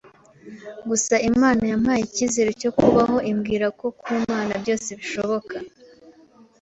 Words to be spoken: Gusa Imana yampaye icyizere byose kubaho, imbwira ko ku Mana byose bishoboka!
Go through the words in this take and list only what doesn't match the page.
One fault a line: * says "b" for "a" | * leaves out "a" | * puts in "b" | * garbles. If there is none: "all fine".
* says "cyo" for "byose"